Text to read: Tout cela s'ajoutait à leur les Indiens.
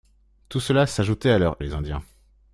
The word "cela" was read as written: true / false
true